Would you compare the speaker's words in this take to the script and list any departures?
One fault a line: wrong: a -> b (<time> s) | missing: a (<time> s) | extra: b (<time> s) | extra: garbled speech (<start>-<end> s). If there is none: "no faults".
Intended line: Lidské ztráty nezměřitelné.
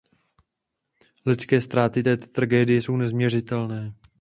extra: této tragédie jsou (2.0 s)